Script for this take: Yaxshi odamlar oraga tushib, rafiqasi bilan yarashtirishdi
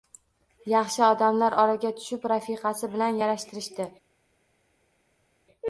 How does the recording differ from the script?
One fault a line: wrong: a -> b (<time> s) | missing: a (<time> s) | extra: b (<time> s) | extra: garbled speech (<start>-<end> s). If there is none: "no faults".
no faults